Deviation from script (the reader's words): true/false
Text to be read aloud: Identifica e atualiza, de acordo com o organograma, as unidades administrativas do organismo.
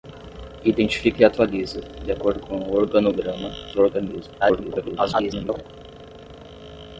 true